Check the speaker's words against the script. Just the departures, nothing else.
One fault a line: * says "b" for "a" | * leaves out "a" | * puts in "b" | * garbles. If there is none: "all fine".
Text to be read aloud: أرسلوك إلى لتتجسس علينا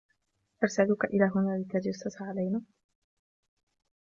* puts in "هنا"